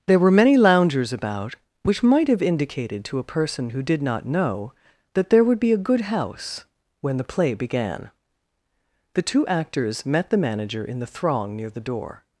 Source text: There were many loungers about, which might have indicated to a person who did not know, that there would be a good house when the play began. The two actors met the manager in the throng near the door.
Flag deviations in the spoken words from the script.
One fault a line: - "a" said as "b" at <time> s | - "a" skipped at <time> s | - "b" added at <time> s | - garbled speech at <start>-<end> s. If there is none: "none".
none